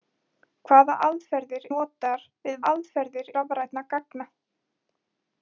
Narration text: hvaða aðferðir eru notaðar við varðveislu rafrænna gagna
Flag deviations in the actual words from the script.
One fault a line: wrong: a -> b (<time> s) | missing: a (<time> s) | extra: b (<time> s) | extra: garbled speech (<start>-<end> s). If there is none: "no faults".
missing: eru (1.7 s)
wrong: varðveislu -> aðferðir (2.7 s)